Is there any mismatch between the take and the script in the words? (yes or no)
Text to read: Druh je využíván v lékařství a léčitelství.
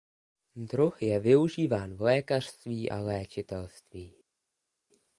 no